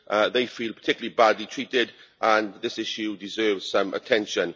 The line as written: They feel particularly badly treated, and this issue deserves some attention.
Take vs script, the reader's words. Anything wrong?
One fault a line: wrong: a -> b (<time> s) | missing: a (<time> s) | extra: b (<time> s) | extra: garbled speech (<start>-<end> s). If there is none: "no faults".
no faults